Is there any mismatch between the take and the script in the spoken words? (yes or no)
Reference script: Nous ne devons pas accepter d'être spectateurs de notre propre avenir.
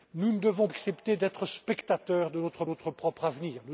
yes